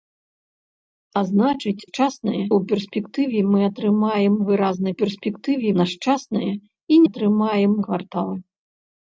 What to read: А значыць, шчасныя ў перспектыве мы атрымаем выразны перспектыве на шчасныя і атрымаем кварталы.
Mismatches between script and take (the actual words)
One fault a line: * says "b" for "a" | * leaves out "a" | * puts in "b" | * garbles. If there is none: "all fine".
all fine